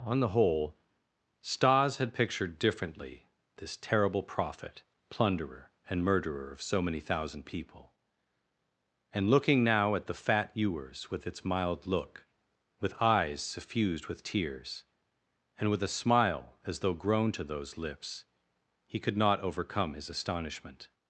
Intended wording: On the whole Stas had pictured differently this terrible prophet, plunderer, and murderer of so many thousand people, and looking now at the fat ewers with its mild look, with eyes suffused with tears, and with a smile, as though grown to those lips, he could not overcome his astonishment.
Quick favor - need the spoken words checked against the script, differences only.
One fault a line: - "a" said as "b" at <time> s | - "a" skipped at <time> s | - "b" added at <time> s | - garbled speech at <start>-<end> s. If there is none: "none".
none